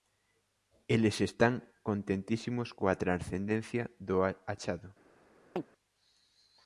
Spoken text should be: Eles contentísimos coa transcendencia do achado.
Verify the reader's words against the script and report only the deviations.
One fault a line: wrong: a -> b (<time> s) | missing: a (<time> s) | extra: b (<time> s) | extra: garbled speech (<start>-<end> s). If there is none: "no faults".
extra: están (1.3 s)